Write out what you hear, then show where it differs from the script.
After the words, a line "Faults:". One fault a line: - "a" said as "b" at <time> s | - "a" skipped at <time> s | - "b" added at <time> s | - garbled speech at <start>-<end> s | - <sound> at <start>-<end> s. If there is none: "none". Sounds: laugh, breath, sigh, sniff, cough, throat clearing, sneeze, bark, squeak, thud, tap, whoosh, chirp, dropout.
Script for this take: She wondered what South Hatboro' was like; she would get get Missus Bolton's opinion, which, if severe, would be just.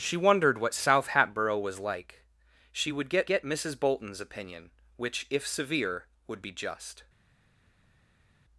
She wondered what South Hatboro' was like; she would get get Missus Bolton's opinion, which, if severe, would be just.
Faults:
none